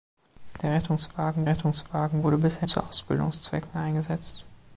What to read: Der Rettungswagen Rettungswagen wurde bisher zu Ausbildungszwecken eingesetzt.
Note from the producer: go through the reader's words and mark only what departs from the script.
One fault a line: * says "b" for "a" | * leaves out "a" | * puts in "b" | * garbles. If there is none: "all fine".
all fine